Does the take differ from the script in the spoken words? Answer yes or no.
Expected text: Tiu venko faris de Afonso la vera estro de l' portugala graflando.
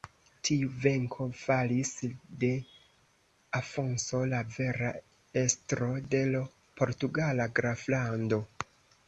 no